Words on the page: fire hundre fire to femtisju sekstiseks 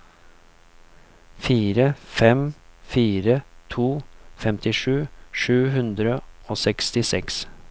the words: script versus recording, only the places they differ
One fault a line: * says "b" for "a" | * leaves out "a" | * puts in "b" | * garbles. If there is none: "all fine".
* says "fem" for "hundre"
* puts in "sju hundre og"